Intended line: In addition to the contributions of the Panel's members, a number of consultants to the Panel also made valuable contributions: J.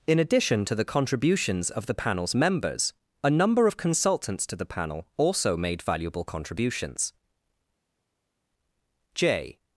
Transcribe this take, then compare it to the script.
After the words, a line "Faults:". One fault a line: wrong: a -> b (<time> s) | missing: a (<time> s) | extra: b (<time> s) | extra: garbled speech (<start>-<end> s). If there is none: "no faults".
In addition to the contributions of the Panel's members, a number of consultants to the Panel also made valuable contributions: J.
Faults:
no faults